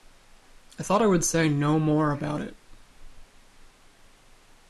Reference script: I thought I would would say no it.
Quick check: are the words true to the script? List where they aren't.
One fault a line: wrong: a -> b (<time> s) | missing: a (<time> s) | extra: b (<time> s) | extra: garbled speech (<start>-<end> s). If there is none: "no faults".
missing: would (1.3 s)
extra: more about (1.8 s)